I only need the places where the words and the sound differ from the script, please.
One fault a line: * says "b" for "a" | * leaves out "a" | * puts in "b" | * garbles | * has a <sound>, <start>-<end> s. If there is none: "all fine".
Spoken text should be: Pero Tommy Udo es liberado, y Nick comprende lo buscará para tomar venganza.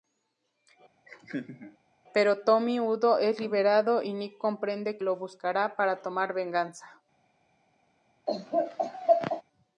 * has a laugh, 1.1-1.8 s
* has a laugh, 8.3-9.4 s